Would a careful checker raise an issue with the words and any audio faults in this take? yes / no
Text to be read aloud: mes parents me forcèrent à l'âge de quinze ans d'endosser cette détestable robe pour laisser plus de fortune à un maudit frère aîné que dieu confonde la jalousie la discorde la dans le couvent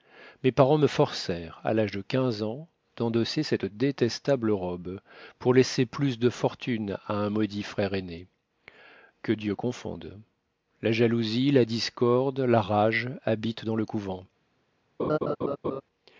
yes